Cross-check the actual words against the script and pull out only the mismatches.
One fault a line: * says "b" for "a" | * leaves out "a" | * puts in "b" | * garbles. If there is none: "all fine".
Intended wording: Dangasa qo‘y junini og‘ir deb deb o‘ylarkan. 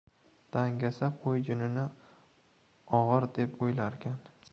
* leaves out "deb"